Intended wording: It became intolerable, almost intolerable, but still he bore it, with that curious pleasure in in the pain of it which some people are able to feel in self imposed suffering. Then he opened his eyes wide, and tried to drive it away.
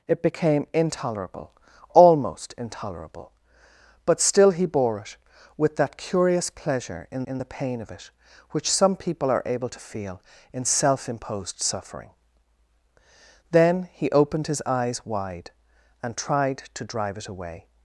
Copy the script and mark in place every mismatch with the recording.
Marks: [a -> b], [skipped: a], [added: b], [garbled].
It became intolerable, almost intolerable, but still he bore it, with that curious pleasure in in the pain of it which some people are able to feel in self imposed suffering. Then he opened his eyes wide, and tried to drive it away.